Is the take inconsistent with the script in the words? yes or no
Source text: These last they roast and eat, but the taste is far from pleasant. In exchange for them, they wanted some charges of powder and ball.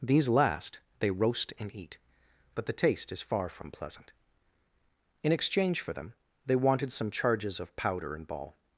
no